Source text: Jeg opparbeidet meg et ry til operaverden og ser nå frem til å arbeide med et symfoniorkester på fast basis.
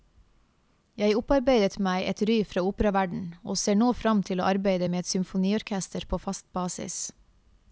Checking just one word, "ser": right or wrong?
right